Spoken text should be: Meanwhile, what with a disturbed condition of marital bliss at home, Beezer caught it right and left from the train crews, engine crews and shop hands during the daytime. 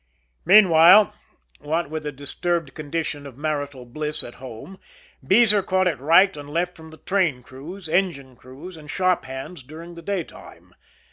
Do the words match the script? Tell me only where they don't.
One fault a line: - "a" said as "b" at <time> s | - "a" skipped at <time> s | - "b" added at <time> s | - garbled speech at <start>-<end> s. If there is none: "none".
none